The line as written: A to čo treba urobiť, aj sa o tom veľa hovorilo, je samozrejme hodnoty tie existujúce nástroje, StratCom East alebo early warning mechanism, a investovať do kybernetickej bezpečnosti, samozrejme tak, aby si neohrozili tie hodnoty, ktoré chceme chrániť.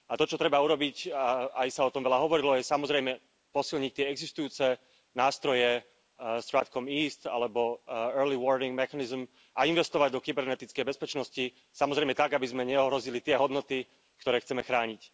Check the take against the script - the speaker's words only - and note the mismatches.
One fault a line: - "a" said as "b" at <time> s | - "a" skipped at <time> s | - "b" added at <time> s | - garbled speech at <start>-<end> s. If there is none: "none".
- "hodnoty" said as "posilniť" at 3.5 s
- "si" said as "sme" at 12.5 s